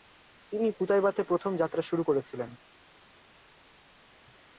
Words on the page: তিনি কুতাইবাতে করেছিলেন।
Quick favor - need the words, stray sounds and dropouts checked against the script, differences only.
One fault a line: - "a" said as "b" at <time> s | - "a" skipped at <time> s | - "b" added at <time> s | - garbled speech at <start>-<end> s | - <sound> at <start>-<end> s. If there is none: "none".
- "প্রথম যাত্রা শুরু" added at 1.2 s